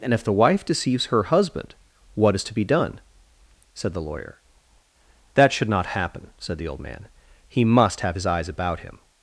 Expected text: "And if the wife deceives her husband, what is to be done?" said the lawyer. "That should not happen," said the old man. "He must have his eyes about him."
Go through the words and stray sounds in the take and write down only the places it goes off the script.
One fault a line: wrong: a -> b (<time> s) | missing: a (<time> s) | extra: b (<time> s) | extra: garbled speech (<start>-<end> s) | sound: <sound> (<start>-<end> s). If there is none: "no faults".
no faults